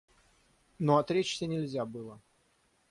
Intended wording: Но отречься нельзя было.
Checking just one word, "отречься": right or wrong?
right